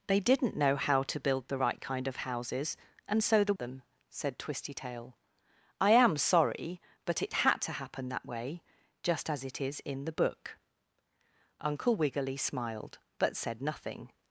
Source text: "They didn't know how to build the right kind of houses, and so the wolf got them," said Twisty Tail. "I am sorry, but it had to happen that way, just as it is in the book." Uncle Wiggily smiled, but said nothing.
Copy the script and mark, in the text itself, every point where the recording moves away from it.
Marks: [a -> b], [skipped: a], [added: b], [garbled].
"They didn't know how to build the right kind of houses, and so the [skipped: wolf got] them," said Twisty Tail. "I am sorry, but it had to happen that way, just as it is in the book." Uncle Wiggily smiled, but said nothing.